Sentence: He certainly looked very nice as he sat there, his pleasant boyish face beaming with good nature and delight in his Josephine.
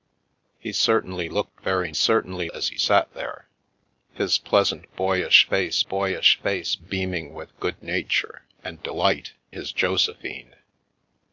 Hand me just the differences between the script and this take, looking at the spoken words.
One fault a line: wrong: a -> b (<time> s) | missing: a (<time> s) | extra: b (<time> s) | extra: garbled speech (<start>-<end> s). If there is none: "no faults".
wrong: nice -> certainly (1.9 s)
extra: boyish face (5.9 s)
missing: in (9.3 s)